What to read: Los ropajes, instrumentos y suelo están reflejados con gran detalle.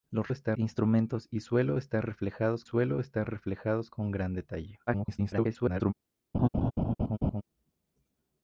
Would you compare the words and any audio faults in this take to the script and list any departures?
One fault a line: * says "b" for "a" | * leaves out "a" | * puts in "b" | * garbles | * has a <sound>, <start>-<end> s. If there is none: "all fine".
* says "están" for "ropajes"
* puts in "suelo están reflejados"
* garbles
* has a laugh, 6.3-7.4 s